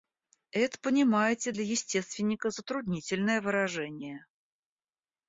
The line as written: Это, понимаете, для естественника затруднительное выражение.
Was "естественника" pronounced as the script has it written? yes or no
yes